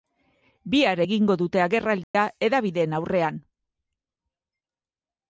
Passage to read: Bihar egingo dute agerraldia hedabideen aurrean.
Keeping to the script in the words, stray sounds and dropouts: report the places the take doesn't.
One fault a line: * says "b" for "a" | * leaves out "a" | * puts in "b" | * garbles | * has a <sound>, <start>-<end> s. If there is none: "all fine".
* has a dropout, 2.0-2.1 s